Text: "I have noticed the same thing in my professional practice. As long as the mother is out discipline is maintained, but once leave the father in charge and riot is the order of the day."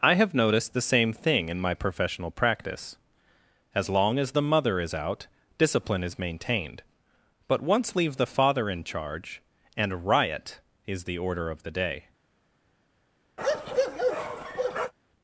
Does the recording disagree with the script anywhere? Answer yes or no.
no